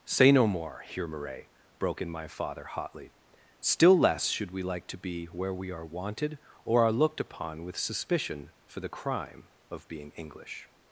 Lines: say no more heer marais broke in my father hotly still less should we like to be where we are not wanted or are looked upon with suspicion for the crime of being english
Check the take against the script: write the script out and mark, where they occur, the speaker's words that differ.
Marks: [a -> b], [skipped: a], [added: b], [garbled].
say no more heer marais broke in my father hotly still less should we like to be where we are [skipped: not] wanted or are looked upon with suspicion for the crime of being english